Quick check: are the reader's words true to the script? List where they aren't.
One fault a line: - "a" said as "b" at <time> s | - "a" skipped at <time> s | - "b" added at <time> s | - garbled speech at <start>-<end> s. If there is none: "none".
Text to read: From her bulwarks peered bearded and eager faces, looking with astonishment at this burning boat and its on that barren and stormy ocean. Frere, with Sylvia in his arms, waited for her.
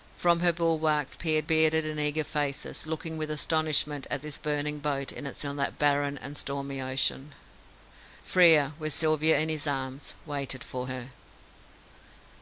none